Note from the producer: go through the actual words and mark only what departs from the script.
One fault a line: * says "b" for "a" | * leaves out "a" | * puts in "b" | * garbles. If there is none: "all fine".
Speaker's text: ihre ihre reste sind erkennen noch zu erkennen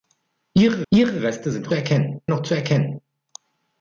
all fine